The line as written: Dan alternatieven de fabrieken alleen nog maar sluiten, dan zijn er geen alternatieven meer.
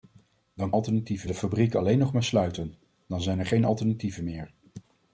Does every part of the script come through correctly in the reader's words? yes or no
yes